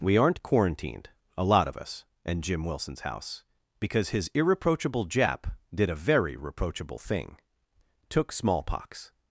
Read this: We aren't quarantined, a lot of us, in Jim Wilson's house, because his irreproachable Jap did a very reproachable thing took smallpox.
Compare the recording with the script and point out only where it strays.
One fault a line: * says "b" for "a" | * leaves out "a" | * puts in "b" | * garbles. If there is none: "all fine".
all fine